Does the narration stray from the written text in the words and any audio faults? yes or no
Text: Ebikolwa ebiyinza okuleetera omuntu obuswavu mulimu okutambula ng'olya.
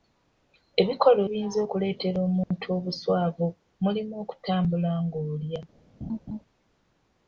yes